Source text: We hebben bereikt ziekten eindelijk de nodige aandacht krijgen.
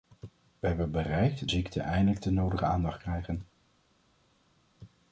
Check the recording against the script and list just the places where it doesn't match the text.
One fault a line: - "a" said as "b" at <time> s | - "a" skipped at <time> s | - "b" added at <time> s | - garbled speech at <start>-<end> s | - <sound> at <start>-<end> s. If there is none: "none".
none